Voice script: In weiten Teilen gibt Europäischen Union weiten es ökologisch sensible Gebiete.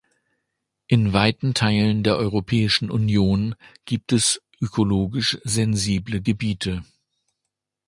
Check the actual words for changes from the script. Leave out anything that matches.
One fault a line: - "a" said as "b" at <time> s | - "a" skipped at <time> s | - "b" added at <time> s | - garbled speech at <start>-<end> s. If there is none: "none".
- "gibt" said as "der" at 2.0 s
- "weiten" said as "gibt" at 3.9 s